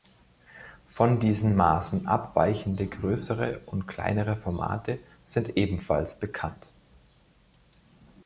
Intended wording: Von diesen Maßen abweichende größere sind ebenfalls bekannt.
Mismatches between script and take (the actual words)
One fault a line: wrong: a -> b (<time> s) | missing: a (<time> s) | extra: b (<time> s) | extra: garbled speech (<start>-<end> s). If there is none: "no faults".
extra: und kleinere Formate (3.7 s)